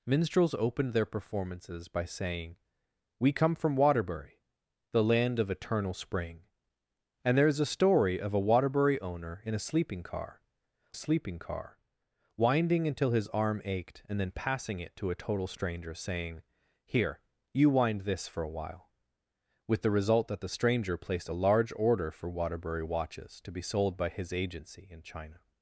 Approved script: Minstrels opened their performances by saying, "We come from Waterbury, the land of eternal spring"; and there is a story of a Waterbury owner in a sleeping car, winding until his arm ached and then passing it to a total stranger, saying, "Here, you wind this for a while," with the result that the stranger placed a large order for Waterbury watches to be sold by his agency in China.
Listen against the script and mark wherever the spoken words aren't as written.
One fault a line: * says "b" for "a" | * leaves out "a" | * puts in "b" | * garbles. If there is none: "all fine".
* puts in "sleeping car"